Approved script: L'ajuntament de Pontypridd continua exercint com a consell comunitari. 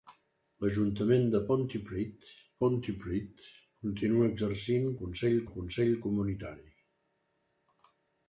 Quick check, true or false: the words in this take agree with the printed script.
false